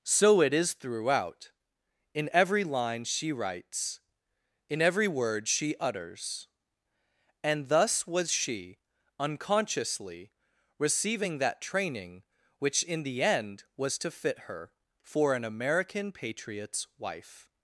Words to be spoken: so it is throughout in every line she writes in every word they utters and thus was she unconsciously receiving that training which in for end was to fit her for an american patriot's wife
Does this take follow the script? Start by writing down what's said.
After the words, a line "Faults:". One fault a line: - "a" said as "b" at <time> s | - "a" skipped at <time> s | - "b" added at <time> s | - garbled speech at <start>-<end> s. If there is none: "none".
so it is throughout in every line she writes in every word she utters and thus was she unconsciously receiving that training which in the end was to fit her for an american patriot's wife
Faults:
- "they" said as "she" at 5.5 s
- "for" said as "the" at 13.0 s